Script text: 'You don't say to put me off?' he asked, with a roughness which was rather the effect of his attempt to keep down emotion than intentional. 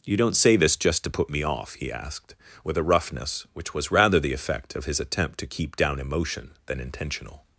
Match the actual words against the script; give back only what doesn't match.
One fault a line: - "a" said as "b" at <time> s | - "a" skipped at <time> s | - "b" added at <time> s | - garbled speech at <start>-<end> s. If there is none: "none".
- "this just" added at 0.6 s